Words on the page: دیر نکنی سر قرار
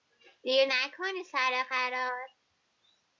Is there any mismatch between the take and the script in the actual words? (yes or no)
no